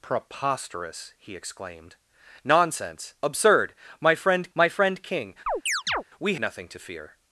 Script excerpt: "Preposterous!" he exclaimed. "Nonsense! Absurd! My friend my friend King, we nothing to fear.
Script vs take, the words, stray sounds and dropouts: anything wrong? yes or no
yes